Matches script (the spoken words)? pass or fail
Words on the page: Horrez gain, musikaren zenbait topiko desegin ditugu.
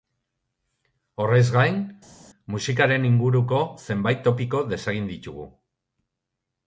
fail